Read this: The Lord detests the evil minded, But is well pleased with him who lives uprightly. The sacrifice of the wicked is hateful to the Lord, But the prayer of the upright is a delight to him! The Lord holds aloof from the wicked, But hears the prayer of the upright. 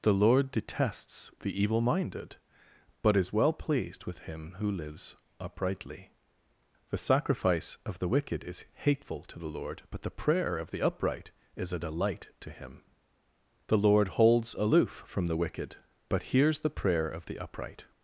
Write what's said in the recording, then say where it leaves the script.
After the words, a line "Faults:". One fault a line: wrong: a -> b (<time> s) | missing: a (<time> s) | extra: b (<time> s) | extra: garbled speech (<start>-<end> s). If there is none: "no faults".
The Lord detests the evil minded, But is well pleased with him who lives uprightly. The sacrifice of the wicked is hateful to the Lord, But the prayer of the upright is a delight to him! The Lord holds aloof from the wicked, But hears the prayer of the upright.
Faults:
no faults